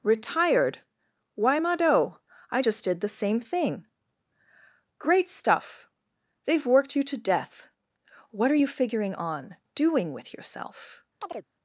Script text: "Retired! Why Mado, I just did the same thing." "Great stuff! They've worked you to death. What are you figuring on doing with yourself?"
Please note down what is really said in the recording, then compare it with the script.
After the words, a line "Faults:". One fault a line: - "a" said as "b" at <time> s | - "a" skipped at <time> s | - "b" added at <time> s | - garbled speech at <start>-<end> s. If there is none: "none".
"Retired! Why Mado, I just did the same thing." "Great stuff! They've worked you to death. What are you figuring on doing with yourself?"
Faults:
none